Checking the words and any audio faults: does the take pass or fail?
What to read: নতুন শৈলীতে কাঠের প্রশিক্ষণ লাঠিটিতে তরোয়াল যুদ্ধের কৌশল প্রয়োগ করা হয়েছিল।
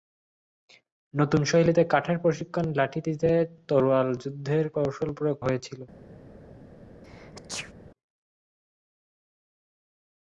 fail